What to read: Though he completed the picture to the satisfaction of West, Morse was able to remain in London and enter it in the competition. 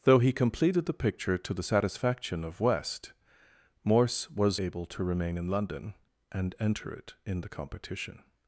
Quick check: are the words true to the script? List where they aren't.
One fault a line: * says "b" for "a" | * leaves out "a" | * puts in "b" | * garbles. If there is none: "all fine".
all fine